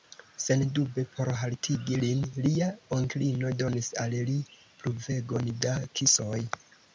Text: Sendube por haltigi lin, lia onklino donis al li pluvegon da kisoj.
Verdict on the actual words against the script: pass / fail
pass